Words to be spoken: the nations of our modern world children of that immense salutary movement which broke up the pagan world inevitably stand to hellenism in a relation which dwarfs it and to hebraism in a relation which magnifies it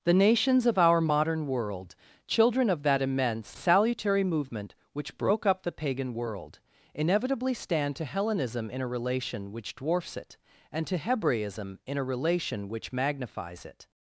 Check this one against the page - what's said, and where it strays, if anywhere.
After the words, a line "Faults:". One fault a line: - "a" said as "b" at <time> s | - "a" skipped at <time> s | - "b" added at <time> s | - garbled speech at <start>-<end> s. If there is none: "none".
the nations of our modern world children of that immense salutary movement which broke up the pagan world inevitably stand to hellenism in a relation which dwarfs it and to hebraism in a relation which magnifies it
Faults:
none